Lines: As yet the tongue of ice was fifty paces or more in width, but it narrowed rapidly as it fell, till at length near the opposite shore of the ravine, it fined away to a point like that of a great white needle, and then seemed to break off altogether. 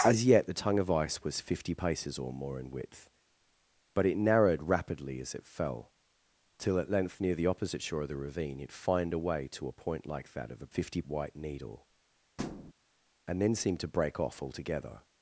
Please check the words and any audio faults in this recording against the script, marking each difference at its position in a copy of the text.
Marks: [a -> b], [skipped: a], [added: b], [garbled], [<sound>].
As yet the tongue of ice was fifty paces or more in width, but it narrowed rapidly as it fell, till at length near the opposite shore of the ravine, it fined away to a point like that of a [great -> fifty] white needle, [thud] and then seemed to break off altogether.